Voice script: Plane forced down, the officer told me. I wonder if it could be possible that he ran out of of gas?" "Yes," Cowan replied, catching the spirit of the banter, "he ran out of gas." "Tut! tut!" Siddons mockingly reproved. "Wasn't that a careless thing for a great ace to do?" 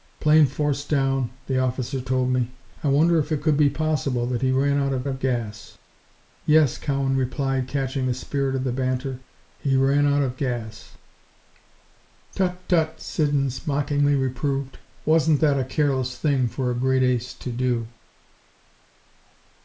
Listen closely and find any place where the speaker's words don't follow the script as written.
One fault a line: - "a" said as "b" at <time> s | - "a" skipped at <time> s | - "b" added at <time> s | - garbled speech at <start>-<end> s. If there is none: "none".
none